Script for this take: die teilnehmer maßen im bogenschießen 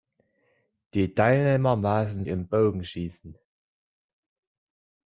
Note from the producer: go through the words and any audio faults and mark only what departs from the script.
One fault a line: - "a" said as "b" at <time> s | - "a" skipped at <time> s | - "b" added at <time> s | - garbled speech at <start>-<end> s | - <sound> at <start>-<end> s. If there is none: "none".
none